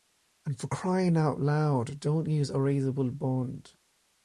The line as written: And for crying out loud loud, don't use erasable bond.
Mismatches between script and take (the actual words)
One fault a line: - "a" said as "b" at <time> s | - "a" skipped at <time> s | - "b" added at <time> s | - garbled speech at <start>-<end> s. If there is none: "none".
- "loud" skipped at 2.0 s